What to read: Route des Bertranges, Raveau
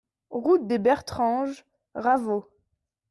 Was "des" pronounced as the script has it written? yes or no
yes